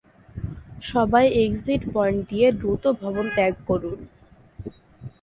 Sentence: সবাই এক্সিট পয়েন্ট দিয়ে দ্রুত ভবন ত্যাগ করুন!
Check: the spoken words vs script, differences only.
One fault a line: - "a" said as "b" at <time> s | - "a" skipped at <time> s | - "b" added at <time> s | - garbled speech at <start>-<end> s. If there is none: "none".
none